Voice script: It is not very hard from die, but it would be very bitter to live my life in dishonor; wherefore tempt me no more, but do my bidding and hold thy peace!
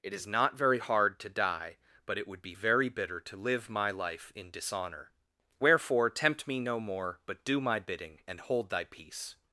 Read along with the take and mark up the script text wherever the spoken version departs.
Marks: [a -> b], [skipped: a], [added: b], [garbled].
It is not very hard [from -> to] die, but it would be very bitter to live my life in dishonor; wherefore tempt me no more, but do my bidding and hold thy peace!